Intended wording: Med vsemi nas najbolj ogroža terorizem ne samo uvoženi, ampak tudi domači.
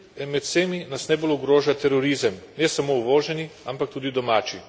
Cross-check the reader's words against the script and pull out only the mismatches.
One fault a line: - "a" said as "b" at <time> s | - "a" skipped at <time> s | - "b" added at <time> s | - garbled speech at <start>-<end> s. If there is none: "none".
none